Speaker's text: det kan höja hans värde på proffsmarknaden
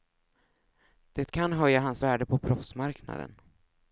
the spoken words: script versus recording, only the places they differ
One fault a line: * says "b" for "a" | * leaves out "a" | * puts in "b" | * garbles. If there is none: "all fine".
all fine